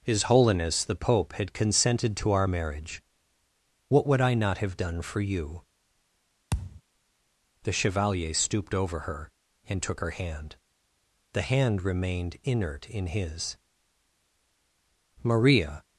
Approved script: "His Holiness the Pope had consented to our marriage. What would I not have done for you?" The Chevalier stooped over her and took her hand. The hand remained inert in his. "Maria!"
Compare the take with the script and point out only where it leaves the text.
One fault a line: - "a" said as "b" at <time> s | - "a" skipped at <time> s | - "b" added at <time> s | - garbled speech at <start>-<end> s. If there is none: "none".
none